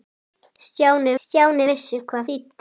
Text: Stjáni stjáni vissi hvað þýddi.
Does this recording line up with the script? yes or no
yes